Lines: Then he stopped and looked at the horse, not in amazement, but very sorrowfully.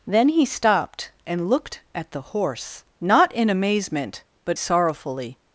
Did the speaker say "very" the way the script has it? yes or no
no